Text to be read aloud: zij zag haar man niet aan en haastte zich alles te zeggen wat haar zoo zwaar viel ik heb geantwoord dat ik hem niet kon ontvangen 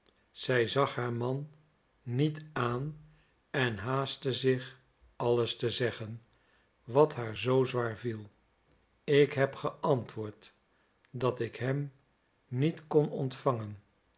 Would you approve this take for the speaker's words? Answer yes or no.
yes